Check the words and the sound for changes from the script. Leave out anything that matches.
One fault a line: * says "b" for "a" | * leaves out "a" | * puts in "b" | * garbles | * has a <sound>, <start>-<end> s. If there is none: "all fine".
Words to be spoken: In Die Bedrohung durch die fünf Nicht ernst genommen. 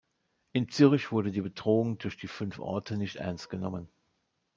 * puts in "Zürich wurde"
* puts in "Orte"